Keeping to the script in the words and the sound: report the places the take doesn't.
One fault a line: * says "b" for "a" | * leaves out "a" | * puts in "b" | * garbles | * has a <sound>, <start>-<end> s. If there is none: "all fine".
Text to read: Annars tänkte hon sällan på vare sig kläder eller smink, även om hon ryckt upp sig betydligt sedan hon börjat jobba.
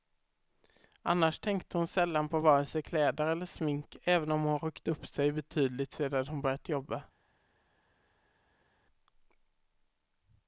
all fine